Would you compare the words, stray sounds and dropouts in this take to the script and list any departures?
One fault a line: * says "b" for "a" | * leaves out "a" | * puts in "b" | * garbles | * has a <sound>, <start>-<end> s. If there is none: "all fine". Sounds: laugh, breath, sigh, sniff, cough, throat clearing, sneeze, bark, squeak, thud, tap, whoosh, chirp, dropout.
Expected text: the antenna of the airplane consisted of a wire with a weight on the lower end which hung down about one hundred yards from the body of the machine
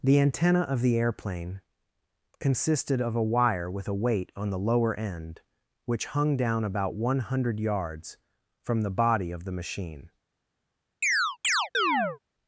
* has a chirp, 11.0-12.2 s